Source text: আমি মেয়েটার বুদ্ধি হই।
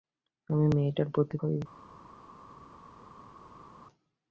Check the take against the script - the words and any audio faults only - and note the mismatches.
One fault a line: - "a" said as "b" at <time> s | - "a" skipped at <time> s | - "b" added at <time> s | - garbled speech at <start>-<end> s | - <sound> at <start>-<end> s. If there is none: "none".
none